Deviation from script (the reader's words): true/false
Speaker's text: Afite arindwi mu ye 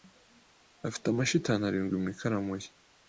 true